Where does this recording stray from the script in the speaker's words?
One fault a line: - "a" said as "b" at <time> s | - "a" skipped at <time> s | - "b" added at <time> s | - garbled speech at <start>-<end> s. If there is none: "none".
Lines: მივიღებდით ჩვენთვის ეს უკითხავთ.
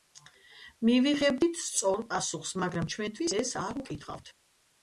- "სწორ პასუხს მაგრამ" added at 1.6 s
- "არ" added at 3.6 s